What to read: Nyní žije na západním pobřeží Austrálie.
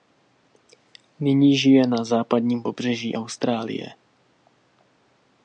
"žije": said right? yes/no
yes